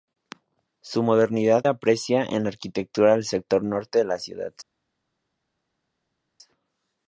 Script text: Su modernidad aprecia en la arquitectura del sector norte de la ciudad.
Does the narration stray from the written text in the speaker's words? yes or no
no